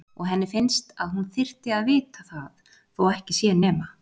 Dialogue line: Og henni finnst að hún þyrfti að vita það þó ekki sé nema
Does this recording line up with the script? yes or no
yes